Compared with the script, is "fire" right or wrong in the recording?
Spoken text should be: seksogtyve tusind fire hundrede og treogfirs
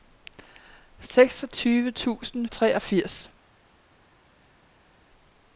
wrong